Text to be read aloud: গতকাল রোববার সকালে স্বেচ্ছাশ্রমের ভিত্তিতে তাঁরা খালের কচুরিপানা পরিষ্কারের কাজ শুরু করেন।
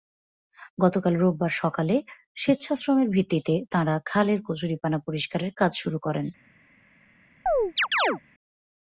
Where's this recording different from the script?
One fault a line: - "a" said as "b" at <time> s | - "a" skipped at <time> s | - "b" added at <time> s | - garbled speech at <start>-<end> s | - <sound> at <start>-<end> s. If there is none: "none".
- chirp at 7.5-8.2 s